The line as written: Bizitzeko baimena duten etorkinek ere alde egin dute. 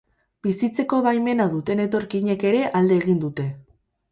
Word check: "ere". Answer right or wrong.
right